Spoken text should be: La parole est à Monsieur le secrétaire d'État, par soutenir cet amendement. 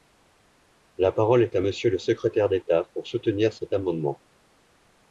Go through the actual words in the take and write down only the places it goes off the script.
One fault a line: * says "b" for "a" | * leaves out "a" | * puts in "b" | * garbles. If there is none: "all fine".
* says "pour" for "par"